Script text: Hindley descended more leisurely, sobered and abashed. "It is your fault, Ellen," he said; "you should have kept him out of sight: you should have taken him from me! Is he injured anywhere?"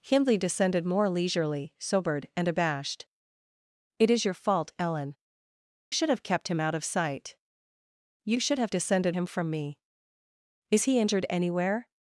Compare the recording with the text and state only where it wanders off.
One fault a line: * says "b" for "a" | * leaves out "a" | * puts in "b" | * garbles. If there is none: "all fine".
* leaves out "he said you"
* says "descended" for "taken"